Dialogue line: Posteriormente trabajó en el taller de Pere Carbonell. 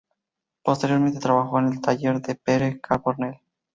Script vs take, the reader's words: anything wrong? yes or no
no